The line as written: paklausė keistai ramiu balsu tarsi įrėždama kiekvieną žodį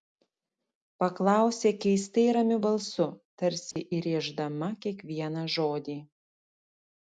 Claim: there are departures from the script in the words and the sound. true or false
true